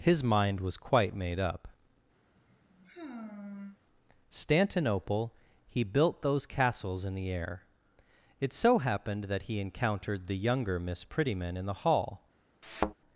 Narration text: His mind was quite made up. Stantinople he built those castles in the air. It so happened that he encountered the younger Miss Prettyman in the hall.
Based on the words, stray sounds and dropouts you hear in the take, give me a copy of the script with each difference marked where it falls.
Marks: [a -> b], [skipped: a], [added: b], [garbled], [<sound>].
His mind was quite made up. [sigh] Stantinople he built those castles in the air. It so happened that he encountered the younger Miss Prettyman in the hall. [thud]